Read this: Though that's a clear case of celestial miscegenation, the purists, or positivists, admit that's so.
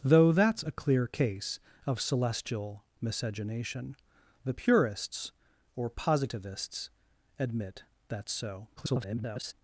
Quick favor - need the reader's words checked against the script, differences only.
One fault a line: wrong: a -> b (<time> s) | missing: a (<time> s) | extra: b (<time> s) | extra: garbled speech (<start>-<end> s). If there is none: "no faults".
extra: garbled speech (8.8-9.5 s)